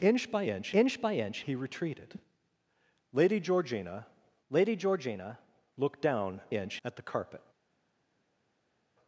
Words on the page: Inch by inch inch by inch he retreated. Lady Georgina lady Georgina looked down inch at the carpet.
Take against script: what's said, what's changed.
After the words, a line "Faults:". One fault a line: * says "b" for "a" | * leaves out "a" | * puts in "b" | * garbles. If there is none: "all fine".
Inch by inch inch by inch he retreated. Lady Georgina lady Georgina looked down inch at the carpet.
Faults:
all fine